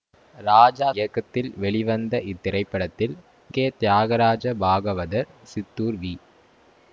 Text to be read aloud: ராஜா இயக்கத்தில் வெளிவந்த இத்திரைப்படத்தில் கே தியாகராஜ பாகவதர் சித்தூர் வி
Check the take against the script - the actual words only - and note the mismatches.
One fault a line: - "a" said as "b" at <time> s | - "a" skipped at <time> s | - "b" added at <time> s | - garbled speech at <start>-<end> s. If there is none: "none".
none